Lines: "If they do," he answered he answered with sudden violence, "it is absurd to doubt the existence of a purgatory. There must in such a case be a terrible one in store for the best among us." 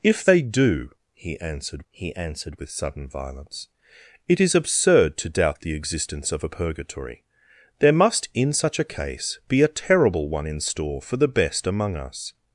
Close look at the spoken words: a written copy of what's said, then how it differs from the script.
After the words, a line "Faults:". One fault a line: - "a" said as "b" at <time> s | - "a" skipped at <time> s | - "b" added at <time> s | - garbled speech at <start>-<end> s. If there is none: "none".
"If they do," he answered he answered with sudden violence, "it is absurd to doubt the existence of a purgatory. There must in such a case be a terrible one in store for the best among us."
Faults:
none